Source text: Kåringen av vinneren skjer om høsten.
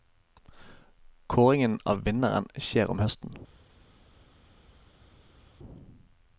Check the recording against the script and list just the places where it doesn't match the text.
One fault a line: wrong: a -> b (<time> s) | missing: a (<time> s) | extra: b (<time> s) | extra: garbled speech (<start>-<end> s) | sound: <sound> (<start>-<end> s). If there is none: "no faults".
no faults